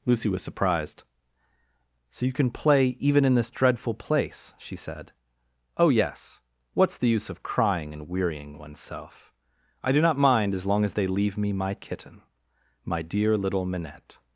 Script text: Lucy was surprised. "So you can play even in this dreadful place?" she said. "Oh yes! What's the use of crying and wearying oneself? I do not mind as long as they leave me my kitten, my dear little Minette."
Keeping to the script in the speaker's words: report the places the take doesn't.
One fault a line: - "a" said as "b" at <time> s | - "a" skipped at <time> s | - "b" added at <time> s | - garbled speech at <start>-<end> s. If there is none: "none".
none